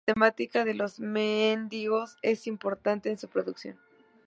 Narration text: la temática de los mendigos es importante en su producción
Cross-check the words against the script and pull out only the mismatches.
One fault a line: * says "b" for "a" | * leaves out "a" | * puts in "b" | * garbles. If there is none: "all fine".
all fine